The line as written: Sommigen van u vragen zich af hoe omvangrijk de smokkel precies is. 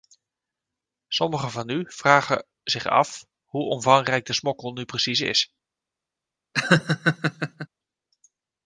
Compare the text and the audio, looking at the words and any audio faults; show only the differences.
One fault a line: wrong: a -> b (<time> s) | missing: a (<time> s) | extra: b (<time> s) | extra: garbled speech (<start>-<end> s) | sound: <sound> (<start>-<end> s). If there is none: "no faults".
extra: nu (4.7 s)
sound: laugh (6.5-7.7 s)